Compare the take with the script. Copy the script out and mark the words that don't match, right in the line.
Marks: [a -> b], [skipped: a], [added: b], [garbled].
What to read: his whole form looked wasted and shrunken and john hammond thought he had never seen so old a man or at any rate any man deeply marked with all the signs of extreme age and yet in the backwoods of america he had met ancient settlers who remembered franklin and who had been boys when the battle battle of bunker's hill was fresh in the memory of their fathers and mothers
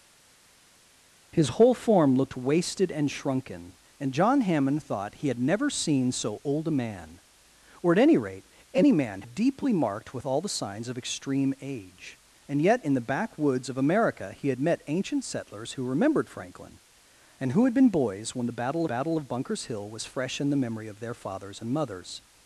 his whole form looked wasted and shrunken and john hammond thought he had never seen so old a man or at any rate any man deeply marked with all the signs of extreme age and yet in the backwoods of america he had met ancient settlers who remembered franklin and who had been boys when the battle battle of bunker's hill was fresh in the memory of their fathers and mothers